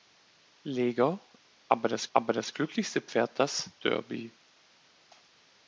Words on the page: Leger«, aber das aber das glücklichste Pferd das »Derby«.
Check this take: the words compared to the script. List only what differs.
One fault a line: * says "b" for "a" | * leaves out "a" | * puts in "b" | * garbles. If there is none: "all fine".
all fine